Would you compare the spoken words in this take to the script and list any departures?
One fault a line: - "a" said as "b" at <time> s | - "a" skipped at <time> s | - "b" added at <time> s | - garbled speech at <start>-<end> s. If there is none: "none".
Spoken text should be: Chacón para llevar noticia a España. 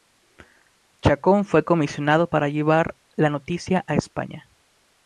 - "fue comisionado" added at 1.4 s
- "la" added at 3.2 s